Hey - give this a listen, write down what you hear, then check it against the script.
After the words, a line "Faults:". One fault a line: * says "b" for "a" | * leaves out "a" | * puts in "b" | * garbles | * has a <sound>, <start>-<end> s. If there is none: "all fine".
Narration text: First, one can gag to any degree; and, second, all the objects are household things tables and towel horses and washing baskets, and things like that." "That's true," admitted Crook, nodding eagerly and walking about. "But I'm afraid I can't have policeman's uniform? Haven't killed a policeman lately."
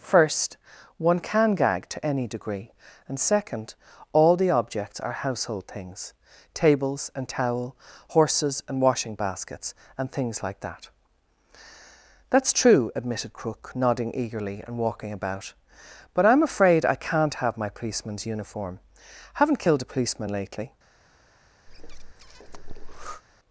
First, one can gag to any degree; and, second, all the objects are household things tables and towel horses and washing baskets, and things like that." "That's true," admitted Crook, nodding eagerly and walking about. "But I'm afraid I can't have my policeman's uniform? Haven't killed a policeman lately."
Faults:
* puts in "my"
* has a breath, 21.7-23.2 s